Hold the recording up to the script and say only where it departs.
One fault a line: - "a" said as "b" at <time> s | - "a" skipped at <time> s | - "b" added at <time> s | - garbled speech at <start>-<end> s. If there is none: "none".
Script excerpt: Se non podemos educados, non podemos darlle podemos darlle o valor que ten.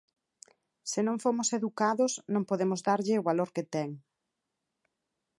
- "podemos" said as "fomos" at 1.2 s
- "podemos darlle" skipped at 3.1 s